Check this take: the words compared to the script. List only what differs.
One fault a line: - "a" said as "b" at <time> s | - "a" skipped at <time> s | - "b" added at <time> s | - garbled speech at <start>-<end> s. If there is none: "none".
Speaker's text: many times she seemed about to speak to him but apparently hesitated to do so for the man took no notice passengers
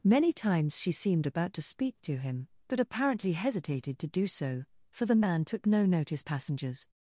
none